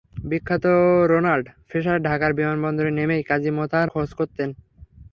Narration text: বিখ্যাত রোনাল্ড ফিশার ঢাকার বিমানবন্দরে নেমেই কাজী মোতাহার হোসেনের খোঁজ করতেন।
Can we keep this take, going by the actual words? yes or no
no